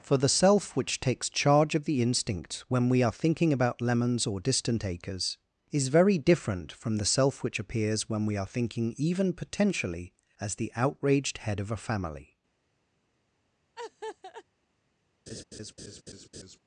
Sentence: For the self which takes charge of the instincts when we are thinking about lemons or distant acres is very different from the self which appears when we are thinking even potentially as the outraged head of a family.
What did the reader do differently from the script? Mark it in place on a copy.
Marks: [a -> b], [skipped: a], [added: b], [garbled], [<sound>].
For the self which takes charge of the [instincts -> instinct] when we are thinking about lemons or distant acres is very different from the self which appears when we are thinking even potentially as the outraged head of a family. [laugh] [laugh]